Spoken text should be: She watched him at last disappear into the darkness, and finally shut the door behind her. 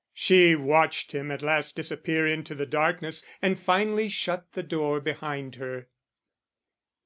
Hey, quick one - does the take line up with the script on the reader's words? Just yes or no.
yes